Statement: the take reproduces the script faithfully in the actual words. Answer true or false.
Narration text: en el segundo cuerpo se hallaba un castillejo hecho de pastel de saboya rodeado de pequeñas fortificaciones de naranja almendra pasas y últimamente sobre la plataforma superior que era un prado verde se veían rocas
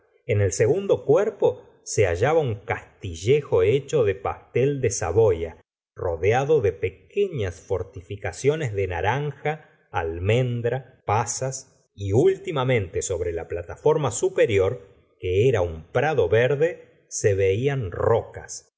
true